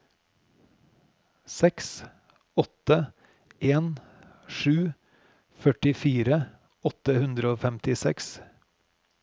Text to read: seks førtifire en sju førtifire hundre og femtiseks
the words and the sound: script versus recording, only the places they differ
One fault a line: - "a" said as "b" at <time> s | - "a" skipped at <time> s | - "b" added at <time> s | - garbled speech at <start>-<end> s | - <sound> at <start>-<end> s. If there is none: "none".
- "førtifire" said as "åtte" at 2.6 s
- "åtte" added at 6.9 s